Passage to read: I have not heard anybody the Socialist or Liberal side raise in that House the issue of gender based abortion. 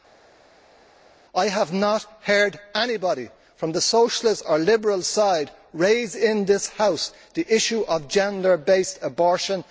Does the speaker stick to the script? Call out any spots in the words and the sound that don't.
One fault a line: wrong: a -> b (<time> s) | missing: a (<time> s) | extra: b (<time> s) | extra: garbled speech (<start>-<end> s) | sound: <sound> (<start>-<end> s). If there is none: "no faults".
extra: from (3.5 s)
wrong: that -> this (6.4 s)